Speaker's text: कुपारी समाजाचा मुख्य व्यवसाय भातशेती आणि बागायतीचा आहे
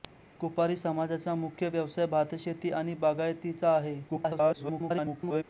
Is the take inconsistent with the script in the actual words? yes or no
yes